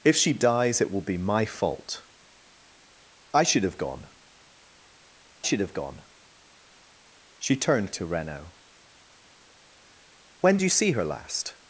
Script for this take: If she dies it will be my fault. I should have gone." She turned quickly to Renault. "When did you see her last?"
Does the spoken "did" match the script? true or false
false